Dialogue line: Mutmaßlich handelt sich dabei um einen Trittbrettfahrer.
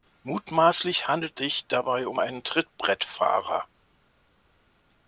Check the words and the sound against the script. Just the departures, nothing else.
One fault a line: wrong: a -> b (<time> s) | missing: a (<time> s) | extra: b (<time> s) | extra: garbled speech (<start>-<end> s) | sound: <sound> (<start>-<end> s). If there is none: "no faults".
no faults